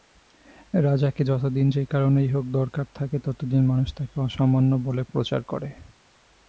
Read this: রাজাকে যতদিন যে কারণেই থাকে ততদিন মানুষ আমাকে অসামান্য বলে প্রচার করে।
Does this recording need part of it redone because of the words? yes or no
yes